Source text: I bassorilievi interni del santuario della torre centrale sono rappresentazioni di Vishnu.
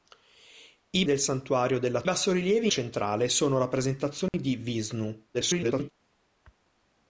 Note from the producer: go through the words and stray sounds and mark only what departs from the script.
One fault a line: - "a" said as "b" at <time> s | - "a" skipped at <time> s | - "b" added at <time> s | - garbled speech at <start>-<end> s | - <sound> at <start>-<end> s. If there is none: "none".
- "bassorilievi interni" skipped at 1.1 s
- "torre" said as "bassorilievi" at 2.0 s
- dropout at 4.3-4.3 s
- garbled speech at 5.3-5.9 s